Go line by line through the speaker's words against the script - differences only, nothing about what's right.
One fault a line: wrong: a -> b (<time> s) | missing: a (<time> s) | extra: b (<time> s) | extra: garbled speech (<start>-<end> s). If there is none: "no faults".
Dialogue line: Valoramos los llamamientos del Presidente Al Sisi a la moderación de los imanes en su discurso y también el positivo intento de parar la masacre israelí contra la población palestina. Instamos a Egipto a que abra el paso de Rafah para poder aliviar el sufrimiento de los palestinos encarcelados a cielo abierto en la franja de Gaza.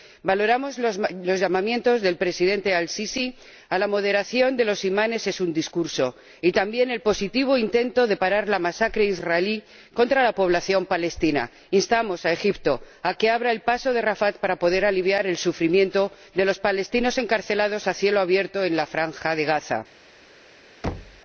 no faults